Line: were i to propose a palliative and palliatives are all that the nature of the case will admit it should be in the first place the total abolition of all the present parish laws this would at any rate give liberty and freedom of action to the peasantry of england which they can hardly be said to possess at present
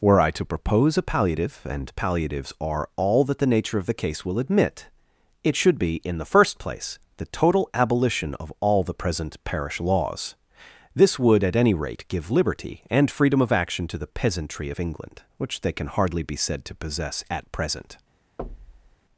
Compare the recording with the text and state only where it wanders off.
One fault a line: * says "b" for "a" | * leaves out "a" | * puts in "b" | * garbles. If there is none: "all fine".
all fine